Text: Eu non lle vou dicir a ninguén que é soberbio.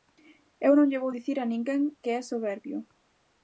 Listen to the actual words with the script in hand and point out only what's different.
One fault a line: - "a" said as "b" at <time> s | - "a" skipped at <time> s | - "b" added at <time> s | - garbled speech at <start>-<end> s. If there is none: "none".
none